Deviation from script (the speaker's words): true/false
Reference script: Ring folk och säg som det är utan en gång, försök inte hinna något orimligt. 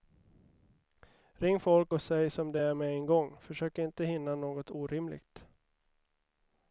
true